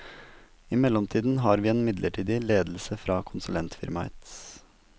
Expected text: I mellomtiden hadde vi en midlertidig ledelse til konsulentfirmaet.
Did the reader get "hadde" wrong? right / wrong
wrong